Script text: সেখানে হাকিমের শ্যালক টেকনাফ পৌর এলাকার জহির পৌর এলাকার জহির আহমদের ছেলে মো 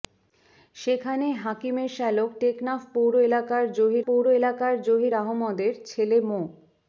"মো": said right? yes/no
yes